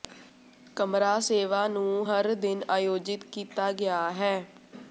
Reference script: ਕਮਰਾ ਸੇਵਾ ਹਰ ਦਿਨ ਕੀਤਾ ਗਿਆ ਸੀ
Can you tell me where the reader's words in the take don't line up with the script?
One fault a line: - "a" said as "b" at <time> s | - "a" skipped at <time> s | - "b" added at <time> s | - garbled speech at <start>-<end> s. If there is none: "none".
- "ਨੂੰ" added at 1.7 s
- "ਆਯੋਜਿਤ" added at 2.7 s
- "ਸੀ" said as "ਹੈ" at 4.1 s